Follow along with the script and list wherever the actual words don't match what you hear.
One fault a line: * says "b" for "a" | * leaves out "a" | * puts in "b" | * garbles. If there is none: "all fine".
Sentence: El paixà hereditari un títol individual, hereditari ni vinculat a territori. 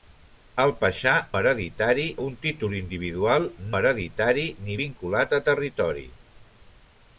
all fine